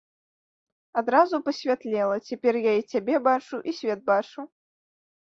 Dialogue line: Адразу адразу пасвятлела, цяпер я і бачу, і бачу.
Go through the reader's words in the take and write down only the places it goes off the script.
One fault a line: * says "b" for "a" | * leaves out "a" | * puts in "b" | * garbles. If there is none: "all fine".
* leaves out "адразу"
* puts in "цябе"
* puts in "свет"